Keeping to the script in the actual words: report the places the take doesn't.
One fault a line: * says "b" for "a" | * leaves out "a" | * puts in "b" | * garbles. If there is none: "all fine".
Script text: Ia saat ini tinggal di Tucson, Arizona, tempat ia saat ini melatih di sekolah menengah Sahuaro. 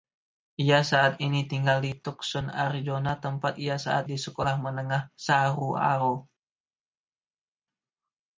* leaves out "ini melatih"